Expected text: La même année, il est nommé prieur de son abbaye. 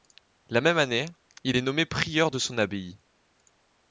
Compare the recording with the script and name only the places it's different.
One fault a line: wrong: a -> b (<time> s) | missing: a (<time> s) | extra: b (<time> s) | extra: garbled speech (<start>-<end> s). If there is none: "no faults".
no faults